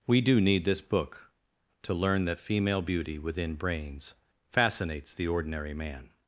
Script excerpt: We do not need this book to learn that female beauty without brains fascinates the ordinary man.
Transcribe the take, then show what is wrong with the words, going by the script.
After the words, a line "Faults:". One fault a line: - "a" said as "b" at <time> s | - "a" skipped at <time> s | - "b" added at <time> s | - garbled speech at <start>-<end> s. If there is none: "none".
We do need this book to learn that female beauty within brains fascinates the ordinary man.
Faults:
- "not" skipped at 0.4 s
- "without" said as "within" at 3.2 s